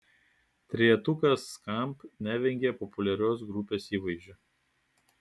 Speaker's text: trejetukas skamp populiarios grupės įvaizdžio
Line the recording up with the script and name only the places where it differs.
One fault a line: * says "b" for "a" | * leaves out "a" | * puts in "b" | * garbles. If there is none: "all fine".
* puts in "nevengia"